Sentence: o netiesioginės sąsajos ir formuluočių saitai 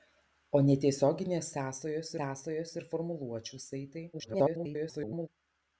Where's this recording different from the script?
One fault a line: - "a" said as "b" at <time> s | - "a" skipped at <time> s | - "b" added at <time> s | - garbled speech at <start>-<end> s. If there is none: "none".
- "sąsajos" added at 2.2 s
- garbled speech at 4.1-5.3 s